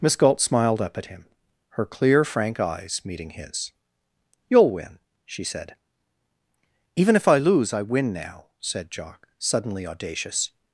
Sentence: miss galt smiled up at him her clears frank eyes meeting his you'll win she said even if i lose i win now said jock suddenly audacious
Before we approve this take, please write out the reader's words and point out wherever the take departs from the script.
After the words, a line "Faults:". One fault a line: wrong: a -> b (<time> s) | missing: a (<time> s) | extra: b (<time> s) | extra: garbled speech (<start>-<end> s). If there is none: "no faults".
miss galt smiled up at him her clear frank eyes meeting his you'll win she said even if i lose i win now said jock suddenly audacious
Faults:
wrong: clears -> clear (1.9 s)